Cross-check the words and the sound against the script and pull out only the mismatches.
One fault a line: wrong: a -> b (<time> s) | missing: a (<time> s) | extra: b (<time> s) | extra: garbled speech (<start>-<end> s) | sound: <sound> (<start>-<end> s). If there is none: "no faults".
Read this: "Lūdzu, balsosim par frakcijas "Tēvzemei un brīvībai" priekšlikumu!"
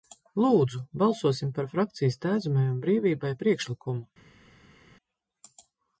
no faults